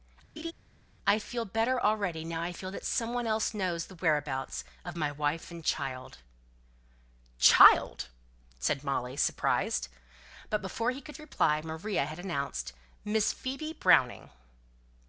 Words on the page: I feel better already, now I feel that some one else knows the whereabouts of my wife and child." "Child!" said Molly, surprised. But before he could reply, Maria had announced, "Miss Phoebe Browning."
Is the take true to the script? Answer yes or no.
yes